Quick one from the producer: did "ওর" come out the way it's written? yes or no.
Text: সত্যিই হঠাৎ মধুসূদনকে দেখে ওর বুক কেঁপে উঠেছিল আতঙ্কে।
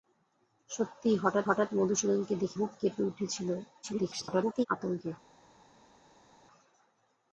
no